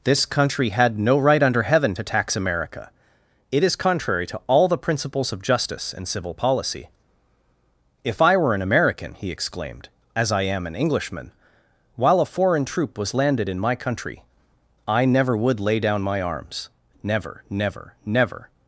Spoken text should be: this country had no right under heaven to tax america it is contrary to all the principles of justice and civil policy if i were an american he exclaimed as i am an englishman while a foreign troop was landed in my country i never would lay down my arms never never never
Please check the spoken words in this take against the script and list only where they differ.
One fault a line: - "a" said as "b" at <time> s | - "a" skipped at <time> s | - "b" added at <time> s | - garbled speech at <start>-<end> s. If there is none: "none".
none